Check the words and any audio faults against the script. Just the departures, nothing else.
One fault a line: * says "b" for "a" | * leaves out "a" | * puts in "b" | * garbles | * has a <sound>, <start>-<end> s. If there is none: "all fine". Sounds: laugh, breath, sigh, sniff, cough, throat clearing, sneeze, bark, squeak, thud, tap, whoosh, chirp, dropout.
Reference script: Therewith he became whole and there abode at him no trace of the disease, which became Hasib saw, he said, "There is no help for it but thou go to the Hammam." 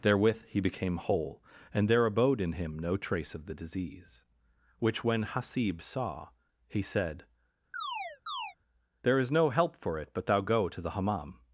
* says "in" for "at"
* says "when" for "became"
* has a chirp, 7.7-8.6 s